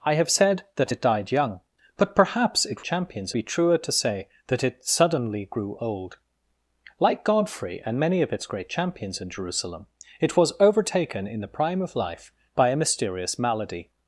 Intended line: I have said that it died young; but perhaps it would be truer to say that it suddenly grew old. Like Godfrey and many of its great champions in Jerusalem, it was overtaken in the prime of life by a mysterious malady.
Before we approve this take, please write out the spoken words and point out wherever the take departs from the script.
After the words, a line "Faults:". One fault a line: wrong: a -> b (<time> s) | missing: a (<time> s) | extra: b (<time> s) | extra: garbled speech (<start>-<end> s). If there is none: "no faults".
I have said that it died young; but perhaps it champions be truer to say that it suddenly grew old. Like Godfrey and many of its great champions in Jerusalem, it was overtaken in the prime of life by a mysterious malady.
Faults:
wrong: would -> champions (2.8 s)